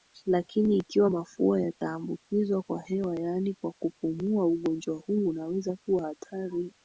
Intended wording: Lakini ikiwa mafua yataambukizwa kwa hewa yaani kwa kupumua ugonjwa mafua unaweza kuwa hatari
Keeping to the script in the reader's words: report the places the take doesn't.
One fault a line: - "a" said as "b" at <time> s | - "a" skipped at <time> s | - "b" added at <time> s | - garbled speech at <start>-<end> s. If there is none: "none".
- "mafua" said as "huu" at 5.0 s